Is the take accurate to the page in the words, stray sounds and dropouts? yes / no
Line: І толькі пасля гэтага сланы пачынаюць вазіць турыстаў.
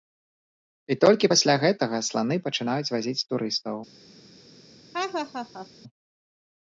no